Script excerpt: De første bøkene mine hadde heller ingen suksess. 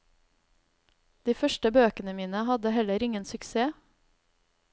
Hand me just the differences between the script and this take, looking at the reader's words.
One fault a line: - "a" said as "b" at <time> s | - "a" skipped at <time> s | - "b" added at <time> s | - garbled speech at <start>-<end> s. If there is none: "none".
none